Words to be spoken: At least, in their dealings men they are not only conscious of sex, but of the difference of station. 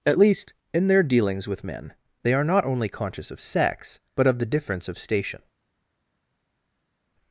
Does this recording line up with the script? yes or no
no